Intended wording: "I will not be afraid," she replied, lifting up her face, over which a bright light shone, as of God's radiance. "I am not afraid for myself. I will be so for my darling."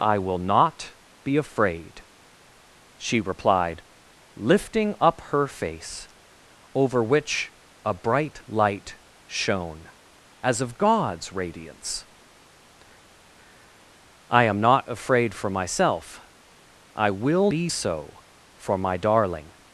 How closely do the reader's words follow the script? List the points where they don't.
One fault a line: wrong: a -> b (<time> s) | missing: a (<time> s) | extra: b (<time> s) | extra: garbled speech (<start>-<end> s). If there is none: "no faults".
no faults